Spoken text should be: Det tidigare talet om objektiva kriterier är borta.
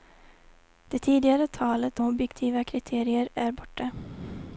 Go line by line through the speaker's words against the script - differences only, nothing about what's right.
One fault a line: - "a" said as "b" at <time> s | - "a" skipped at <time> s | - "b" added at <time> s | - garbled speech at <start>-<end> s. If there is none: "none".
- "om" skipped at 2.0 s